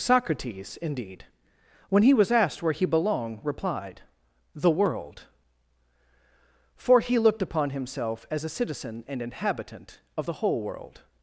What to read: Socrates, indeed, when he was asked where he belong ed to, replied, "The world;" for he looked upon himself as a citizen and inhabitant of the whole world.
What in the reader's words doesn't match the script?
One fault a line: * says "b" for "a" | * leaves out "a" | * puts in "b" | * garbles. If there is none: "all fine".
* says "belonged" for "belong ed to"